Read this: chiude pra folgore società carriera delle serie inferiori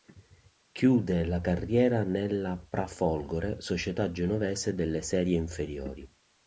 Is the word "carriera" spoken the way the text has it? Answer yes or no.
no